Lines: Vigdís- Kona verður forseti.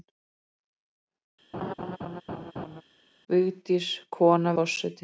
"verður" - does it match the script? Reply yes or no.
no